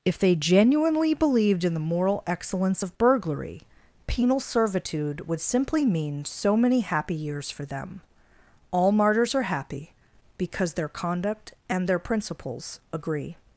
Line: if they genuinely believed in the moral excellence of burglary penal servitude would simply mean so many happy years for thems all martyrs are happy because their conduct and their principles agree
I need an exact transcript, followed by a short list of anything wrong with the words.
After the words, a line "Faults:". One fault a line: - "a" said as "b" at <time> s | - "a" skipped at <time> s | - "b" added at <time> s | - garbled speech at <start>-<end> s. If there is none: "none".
if they genuinely believed in the moral excellence of burglary penal servitude would simply mean so many happy years for them all martyrs are happy because their conduct and their principles agree
Faults:
- "thems" said as "them" at 7.7 s